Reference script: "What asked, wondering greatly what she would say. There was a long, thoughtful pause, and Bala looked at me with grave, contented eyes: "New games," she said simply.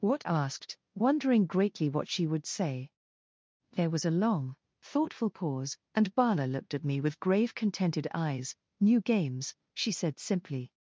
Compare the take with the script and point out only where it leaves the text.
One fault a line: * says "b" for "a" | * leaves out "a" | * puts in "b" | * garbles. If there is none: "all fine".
all fine